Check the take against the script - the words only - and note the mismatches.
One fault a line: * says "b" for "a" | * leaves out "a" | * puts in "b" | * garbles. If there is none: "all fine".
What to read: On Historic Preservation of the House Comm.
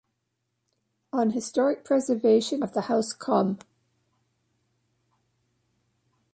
all fine